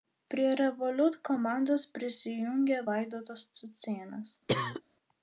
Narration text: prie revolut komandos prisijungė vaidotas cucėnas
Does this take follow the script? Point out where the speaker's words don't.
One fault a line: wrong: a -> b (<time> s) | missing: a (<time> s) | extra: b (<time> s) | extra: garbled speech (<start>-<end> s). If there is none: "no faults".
no faults